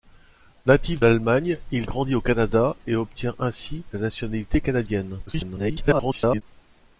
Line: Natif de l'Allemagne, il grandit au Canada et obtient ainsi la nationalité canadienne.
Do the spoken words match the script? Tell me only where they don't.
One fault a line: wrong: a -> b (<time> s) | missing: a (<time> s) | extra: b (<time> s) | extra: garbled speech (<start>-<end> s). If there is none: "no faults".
missing: de (1.0 s)
extra: garbled speech (5.3-6.4 s)